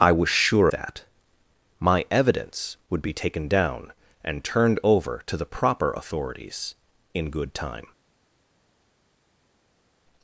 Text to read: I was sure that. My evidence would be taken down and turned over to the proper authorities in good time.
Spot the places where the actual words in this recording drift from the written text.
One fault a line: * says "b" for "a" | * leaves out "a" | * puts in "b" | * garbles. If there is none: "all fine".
all fine